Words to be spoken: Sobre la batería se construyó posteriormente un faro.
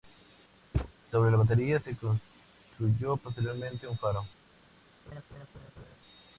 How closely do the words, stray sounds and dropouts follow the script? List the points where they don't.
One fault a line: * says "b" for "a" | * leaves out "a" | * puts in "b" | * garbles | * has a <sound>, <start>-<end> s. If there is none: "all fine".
* has a thud, 0.7-0.9 s
* has a laugh, 5.1-6.0 s